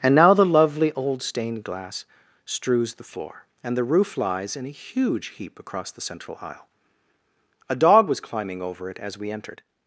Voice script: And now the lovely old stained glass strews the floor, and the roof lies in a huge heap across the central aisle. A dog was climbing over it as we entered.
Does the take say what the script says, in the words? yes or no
yes